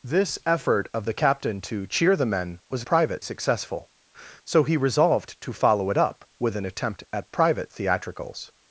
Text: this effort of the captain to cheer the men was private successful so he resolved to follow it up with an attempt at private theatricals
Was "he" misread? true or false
false